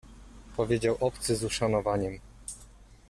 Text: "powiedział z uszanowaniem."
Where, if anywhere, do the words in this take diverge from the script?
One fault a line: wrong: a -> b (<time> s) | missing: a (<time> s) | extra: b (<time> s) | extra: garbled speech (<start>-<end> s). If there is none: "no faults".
extra: obcy (1.0 s)